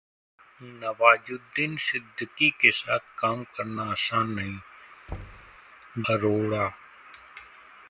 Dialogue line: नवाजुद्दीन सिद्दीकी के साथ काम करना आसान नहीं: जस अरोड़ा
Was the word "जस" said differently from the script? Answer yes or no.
yes